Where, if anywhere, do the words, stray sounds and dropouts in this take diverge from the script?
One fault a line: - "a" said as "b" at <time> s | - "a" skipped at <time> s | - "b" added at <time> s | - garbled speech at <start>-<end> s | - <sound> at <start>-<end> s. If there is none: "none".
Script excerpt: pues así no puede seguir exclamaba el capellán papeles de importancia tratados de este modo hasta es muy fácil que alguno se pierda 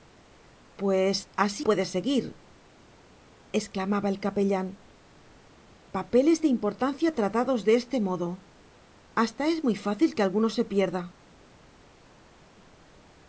- "no" skipped at 1.6 s